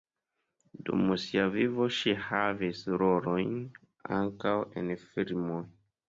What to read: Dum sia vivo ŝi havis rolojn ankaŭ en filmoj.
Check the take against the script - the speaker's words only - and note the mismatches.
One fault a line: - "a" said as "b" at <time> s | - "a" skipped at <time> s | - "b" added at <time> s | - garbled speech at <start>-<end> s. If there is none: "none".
none